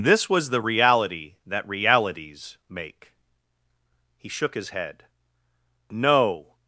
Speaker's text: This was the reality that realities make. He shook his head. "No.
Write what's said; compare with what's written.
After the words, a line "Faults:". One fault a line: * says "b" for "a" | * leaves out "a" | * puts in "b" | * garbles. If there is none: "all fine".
This was the reality that realities make. He shook his head. "No.
Faults:
all fine